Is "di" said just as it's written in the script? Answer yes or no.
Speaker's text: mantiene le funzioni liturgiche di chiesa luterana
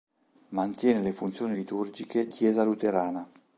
no